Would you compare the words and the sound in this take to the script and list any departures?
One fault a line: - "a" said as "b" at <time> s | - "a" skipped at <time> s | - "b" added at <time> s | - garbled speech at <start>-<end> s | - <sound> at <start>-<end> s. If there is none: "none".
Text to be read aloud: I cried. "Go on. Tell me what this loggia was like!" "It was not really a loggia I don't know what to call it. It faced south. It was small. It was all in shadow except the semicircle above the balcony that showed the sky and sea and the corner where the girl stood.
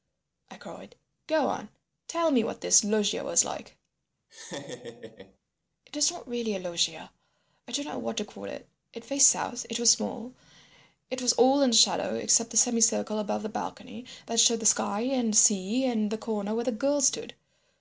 - laugh at 4.3-5.4 s